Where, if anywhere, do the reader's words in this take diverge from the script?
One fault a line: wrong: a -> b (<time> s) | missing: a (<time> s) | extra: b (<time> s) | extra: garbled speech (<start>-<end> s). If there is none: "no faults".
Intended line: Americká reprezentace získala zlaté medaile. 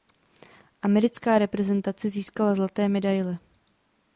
no faults